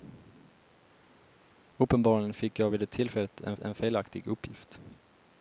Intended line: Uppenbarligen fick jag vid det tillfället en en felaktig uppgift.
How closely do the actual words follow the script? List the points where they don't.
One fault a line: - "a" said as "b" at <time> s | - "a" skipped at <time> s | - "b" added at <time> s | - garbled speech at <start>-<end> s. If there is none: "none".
none